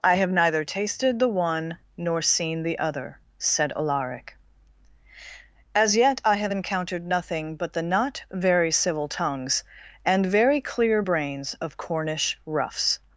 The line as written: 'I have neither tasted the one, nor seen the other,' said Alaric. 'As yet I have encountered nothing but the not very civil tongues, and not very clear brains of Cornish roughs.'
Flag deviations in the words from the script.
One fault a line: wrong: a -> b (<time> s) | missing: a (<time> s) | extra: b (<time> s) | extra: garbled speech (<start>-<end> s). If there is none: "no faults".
missing: not (10.3 s)